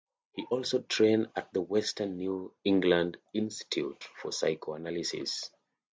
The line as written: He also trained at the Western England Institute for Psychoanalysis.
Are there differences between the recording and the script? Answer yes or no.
yes